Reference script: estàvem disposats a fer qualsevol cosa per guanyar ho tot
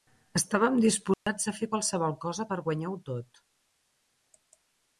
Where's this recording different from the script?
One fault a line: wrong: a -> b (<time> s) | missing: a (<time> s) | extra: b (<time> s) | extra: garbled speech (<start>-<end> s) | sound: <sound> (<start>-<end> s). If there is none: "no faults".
sound: dropout (1.1-1.3 s)